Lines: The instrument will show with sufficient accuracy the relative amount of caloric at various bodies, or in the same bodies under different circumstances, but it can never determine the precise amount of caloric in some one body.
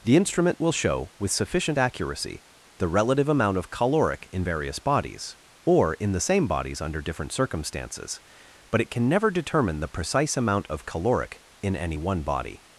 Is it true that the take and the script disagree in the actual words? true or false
true